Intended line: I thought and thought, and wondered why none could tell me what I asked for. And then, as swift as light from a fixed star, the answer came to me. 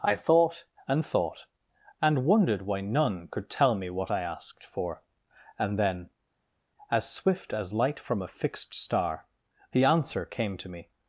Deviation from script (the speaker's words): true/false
false